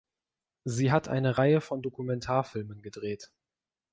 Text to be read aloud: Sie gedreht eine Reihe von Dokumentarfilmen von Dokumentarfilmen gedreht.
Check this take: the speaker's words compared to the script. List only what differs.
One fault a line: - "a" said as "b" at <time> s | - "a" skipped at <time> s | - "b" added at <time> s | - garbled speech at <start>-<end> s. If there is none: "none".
- "gedreht" said as "hat" at 0.9 s
- "von Dokumentarfilmen" skipped at 2.8 s